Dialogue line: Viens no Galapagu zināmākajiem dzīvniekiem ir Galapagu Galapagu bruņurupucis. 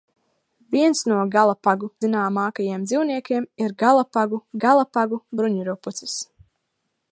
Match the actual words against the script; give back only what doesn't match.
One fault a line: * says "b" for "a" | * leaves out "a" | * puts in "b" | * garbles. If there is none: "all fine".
all fine